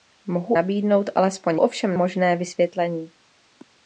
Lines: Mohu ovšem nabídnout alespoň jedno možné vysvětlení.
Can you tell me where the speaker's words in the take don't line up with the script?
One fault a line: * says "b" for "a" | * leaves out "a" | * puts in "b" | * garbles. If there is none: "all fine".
* leaves out "ovšem"
* says "ovšem" for "jedno"